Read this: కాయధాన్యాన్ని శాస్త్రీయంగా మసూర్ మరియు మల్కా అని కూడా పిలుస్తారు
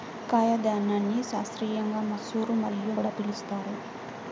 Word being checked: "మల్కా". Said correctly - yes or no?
no